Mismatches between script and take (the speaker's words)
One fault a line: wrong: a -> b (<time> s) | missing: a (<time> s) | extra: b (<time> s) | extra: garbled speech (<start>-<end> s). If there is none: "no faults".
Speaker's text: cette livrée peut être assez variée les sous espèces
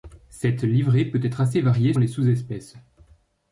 no faults